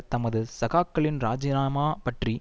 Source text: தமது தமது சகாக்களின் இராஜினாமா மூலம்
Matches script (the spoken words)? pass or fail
fail